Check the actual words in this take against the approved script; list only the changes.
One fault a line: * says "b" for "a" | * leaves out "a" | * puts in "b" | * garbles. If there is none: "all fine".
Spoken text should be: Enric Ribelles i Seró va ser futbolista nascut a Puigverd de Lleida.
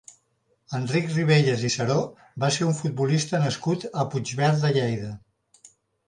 * puts in "un"